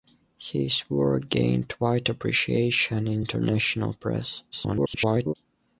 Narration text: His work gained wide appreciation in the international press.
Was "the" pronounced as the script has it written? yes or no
no